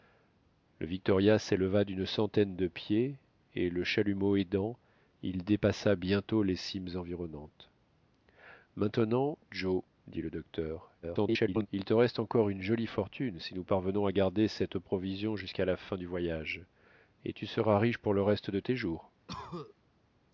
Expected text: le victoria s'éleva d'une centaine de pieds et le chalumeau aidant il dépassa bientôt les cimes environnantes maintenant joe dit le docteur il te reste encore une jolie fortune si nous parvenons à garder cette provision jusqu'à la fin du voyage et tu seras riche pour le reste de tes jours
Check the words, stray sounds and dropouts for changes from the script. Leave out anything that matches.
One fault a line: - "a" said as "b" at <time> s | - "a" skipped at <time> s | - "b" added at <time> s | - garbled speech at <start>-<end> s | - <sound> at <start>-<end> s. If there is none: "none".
- garbled speech at 11.0-11.7 s
- cough at 19.3-19.7 s